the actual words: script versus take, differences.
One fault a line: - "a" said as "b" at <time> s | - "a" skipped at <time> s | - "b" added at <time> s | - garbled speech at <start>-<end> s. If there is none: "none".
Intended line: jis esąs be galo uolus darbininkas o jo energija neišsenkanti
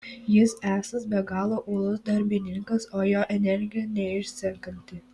none